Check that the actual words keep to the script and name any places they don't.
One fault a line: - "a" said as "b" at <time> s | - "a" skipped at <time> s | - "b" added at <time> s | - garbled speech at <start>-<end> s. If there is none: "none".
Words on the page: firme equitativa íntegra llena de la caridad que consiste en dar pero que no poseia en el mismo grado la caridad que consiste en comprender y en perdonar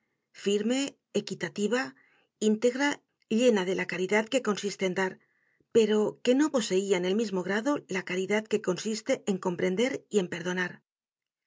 none